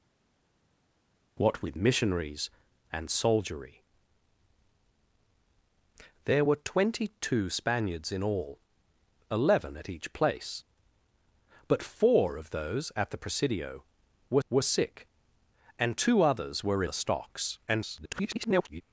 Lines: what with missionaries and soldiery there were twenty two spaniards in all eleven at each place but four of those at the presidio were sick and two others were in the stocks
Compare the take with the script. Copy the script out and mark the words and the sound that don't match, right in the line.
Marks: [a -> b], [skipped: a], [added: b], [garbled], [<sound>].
what with missionaries and soldiery there were twenty two spaniards in all eleven at each place but four of those at the presidio were [added: were] sick and two others were [skipped: in] the stocks [garbled]